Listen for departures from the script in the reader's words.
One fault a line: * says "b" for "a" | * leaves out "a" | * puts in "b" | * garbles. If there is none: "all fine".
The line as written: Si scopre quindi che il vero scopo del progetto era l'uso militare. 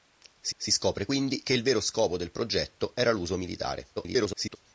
* puts in "si"
* garbles